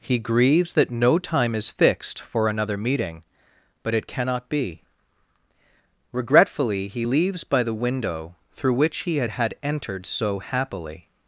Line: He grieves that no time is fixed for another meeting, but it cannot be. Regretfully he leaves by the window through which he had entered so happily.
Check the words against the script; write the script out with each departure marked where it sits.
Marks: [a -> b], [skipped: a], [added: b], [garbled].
He grieves that no time is fixed for another meeting, but it cannot be. Regretfully he leaves by the window through which he had [added: had] entered so happily.